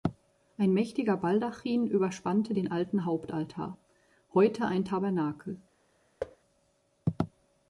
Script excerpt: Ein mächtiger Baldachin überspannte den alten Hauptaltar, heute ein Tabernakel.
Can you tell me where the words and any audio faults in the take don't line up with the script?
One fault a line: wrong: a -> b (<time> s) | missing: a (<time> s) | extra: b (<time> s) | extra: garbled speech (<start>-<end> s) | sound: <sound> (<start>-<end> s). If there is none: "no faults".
sound: thud (6.2-6.4 s)